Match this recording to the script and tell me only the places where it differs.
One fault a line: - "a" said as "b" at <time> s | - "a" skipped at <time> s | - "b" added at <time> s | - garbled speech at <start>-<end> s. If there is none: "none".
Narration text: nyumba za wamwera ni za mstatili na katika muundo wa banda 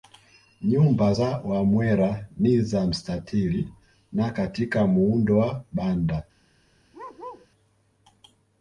none